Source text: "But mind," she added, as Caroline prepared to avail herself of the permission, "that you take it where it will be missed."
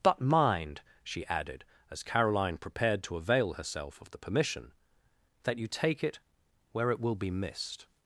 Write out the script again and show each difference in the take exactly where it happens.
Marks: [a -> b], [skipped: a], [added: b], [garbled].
"But mind," she added, as Caroline prepared to avail herself of the permission, "that you take it where it will be missed."